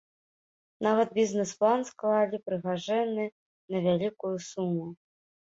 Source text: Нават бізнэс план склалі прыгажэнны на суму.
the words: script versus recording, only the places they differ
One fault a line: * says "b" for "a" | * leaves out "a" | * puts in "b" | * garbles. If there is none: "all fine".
* puts in "вялікую"